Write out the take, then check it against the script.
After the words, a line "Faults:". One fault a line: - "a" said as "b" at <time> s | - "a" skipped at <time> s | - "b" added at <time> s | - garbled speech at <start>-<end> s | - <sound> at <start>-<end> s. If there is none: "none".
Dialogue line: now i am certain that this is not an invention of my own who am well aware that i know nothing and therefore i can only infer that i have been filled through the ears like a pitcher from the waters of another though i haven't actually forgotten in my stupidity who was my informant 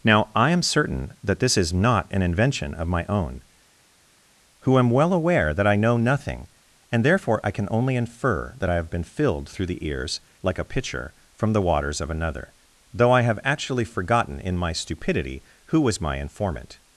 now i am certain that this is not an invention of my own who am well aware that i know nothing and therefore i can only infer that i have been filled through the ears like a pitcher from the waters of another though i have actually forgotten in my stupidity who was my informant
Faults:
- "haven't" said as "have" at 13.2 s